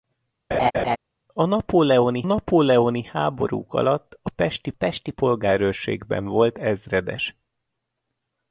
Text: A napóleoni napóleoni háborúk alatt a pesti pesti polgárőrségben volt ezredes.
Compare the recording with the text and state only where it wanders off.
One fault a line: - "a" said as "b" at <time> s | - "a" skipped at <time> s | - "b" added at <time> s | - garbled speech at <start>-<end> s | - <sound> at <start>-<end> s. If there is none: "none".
- laugh at 0.5-1.0 s